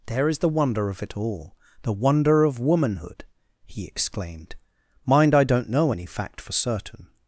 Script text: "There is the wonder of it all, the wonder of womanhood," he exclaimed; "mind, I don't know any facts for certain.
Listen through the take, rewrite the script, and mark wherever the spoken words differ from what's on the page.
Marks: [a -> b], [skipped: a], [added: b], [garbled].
"There is the wonder of it all, the wonder of womanhood," he exclaimed; "mind, I don't know any [facts -> fact] for certain.